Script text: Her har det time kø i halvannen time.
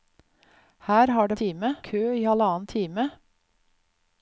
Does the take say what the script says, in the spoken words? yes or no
yes